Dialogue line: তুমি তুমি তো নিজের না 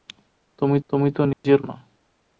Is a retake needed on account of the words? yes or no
no